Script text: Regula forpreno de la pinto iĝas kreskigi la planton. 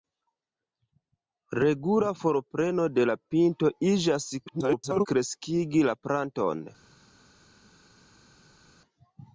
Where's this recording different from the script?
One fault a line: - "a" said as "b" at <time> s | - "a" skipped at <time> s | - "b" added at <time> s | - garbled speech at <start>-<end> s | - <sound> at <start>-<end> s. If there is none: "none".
- garbled speech at 4.5-5.1 s